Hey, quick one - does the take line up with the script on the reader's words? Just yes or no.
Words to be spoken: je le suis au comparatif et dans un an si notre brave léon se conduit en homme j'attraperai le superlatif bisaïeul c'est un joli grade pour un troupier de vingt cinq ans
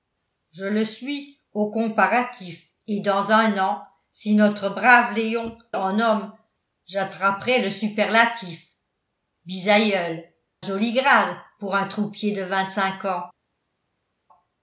no